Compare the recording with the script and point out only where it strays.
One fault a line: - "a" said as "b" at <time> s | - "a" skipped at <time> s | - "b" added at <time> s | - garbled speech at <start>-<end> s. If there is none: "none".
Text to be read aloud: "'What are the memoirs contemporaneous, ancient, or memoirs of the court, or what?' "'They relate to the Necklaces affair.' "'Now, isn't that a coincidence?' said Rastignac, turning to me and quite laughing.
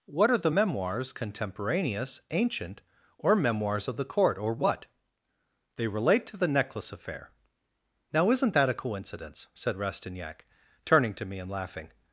- "Necklaces" said as "Necklace" at 6.5 s
- "quite" skipped at 11.5 s